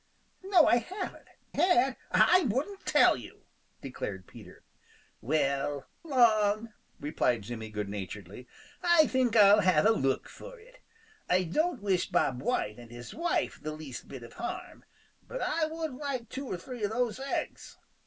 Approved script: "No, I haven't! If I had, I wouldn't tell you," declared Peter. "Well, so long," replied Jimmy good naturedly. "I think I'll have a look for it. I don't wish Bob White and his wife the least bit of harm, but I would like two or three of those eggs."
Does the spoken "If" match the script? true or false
false